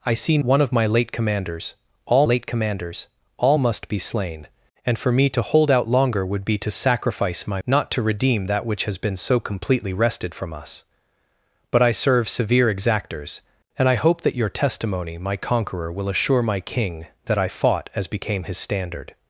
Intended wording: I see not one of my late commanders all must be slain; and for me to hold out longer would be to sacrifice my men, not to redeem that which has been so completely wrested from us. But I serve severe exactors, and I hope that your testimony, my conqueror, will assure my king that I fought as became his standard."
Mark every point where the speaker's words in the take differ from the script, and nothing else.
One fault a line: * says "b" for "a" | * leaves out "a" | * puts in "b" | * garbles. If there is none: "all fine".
* leaves out "not"
* puts in "late commanders all"
* leaves out "men"